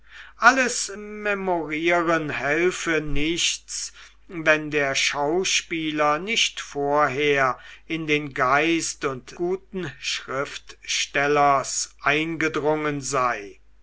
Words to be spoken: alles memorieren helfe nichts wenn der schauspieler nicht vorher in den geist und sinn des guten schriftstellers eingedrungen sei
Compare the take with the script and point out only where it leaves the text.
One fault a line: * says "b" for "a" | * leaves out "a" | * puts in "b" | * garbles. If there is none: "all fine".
* leaves out "sinn des"